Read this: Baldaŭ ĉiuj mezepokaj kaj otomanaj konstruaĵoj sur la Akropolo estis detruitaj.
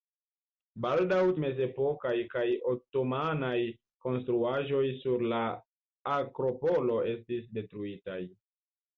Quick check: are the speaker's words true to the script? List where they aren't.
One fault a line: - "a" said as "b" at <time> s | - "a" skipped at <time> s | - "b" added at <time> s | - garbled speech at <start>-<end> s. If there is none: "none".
- "ĉiuj" skipped at 1.2 s